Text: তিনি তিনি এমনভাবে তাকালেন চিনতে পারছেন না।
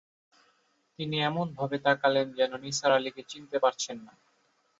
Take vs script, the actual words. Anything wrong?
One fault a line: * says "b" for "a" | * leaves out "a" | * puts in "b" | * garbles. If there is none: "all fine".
* leaves out "তিনি"
* puts in "যেন নিসার আলিকে"